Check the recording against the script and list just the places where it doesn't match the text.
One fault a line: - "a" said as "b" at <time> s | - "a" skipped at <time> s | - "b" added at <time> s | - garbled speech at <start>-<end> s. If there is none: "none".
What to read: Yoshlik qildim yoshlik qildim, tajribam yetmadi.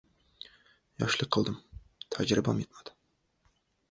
- "yoshlik qildim" skipped at 1.6 s